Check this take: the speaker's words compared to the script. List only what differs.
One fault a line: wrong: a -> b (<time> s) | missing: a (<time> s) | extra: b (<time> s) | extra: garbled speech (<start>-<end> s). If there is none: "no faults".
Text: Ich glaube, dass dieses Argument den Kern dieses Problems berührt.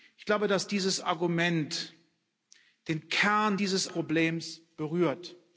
no faults